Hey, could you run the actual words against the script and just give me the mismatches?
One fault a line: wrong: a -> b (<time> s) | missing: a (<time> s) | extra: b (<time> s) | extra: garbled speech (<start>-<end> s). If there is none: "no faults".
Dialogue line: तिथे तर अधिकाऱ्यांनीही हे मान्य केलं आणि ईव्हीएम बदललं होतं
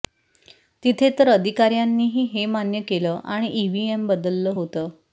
no faults